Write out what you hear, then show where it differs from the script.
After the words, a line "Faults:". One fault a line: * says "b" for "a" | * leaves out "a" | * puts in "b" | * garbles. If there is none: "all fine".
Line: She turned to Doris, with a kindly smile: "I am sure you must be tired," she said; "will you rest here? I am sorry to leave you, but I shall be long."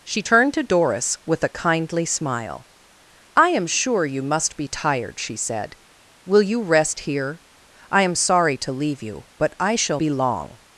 She turned to Doris, with a kindly smile: "I am sure you must be tired," she said; "will you rest here? I am sorry to leave you, but I shall be long."
Faults:
all fine